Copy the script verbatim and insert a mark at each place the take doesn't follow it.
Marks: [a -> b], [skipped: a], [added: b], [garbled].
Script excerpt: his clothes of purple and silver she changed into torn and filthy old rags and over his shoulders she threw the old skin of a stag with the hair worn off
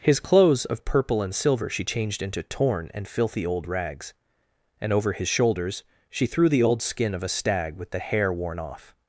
his clothes of purple and silver she changed into torn and filthy old rags and over his shoulders she threw the old skin of a stag with the hair worn off